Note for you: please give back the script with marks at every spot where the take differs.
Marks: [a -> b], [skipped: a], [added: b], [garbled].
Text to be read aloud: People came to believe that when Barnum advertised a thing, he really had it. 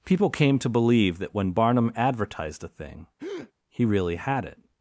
People came to believe that when Barnum advertised a thing, he really had it.